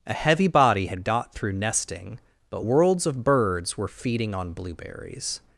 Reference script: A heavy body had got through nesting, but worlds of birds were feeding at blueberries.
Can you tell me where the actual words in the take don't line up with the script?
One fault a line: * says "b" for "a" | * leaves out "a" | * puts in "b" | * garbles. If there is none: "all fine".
* says "on" for "at"